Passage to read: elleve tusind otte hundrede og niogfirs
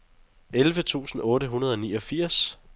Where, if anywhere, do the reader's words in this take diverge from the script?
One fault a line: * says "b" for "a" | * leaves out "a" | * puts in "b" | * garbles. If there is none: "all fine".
all fine